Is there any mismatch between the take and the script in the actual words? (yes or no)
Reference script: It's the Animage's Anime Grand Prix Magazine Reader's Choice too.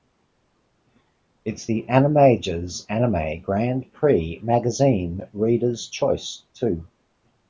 no